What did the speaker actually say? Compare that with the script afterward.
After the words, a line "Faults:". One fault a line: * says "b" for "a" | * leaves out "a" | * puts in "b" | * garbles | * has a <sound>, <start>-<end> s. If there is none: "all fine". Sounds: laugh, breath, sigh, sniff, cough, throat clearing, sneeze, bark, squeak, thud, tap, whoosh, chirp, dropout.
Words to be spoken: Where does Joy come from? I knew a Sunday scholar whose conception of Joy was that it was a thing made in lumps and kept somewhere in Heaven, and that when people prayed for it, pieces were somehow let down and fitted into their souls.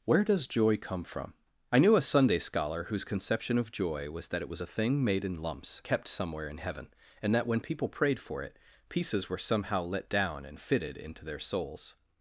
Where does Joy come from? I knew a Sunday scholar whose conception of Joy was that it was a thing made in lumps kept somewhere in Heaven, and that when people prayed for it, pieces were somehow let down and fitted into their souls.
Faults:
* leaves out "and"